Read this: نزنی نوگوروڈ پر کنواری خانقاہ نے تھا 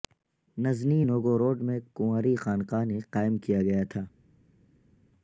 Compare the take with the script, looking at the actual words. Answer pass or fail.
fail